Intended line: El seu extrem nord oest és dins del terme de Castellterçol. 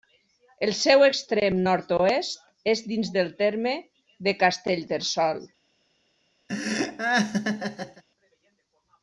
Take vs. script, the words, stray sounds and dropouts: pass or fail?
fail